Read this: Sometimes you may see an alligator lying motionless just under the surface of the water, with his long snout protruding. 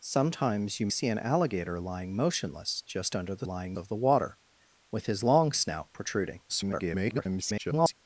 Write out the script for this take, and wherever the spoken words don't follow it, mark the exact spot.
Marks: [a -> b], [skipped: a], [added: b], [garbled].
Sometimes you [skipped: may] see an alligator lying motionless just under the [surface -> lying] of the water, with his long snout protruding. [garbled]